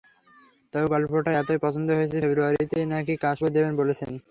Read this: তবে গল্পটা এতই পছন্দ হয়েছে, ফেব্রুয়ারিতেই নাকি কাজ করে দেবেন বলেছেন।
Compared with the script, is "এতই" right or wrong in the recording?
right